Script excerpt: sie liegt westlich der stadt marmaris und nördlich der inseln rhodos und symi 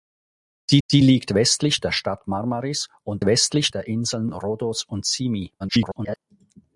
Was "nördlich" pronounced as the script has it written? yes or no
no